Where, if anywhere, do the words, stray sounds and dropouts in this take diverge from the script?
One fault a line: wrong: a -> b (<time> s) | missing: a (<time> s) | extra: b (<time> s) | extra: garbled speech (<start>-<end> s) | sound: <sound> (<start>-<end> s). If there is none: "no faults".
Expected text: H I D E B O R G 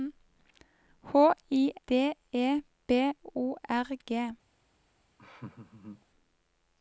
sound: laugh (5.2-6.1 s)